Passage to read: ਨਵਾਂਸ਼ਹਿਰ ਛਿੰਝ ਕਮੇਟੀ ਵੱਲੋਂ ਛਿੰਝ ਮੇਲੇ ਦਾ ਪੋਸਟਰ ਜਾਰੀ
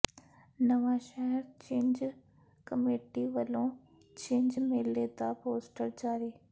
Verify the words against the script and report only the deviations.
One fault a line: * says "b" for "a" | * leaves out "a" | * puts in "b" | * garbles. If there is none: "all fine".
all fine